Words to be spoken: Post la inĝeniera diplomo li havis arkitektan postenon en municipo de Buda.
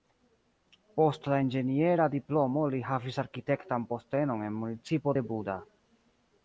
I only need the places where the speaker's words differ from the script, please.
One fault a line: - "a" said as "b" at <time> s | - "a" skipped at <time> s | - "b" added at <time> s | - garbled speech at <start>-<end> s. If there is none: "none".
none